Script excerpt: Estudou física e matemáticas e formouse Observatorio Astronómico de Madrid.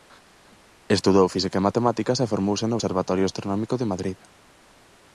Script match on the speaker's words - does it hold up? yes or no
no